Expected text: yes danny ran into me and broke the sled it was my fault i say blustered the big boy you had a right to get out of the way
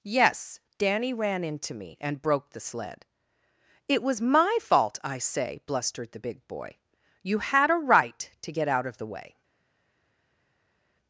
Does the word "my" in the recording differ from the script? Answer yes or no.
no